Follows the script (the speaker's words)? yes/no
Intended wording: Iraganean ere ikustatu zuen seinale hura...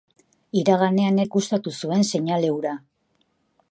no